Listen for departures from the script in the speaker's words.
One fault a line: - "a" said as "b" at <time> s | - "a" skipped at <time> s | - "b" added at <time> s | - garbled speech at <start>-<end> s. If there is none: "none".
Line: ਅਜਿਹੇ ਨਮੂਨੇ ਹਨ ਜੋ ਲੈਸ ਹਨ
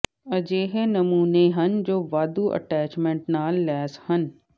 - "ਵਾਧੂ ਅਟੈਚਮੈਂਟ ਨਾਲ" added at 2.1 s